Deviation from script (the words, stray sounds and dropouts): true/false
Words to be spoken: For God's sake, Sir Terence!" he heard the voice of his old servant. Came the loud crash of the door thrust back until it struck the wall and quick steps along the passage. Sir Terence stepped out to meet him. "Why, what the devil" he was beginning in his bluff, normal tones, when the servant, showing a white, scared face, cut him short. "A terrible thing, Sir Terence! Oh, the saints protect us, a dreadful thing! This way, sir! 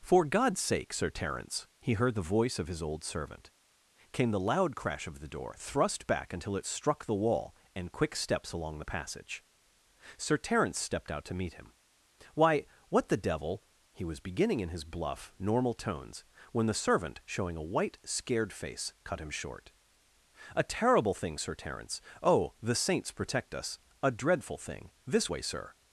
false